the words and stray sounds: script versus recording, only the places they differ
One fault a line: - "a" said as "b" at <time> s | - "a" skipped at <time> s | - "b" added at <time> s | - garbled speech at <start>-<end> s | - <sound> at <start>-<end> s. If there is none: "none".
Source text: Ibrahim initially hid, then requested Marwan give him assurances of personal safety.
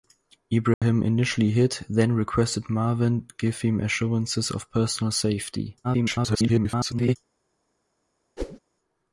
- dropout at 0.7-0.8 s
- garbled speech at 5.8-7.2 s
- whoosh at 8.4-8.6 s